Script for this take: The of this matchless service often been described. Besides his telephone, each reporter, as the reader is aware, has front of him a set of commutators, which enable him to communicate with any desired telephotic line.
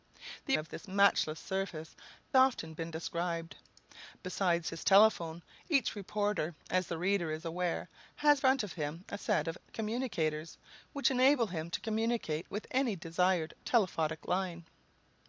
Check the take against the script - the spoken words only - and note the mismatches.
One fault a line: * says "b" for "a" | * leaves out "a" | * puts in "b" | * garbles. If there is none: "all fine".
all fine